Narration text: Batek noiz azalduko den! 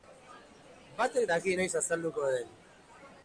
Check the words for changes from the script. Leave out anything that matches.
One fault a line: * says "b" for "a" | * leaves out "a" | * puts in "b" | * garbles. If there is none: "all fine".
* puts in "daki"